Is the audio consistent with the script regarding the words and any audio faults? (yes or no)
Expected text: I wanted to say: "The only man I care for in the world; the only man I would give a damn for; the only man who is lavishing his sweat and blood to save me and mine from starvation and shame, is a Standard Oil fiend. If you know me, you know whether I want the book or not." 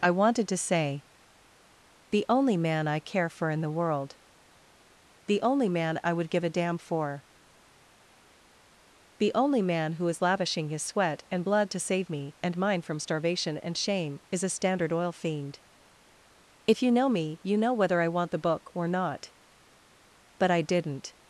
no